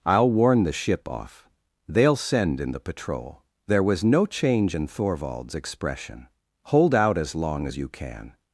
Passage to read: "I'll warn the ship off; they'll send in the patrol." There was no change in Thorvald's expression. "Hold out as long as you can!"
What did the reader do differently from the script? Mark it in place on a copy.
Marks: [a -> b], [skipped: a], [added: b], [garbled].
"I'll warn the ship off; they'll send in the patrol." There was no change in Thorvald's expression. "Hold out as long as you can!"